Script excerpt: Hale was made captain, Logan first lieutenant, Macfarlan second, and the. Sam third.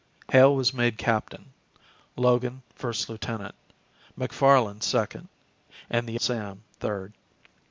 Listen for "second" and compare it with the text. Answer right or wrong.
right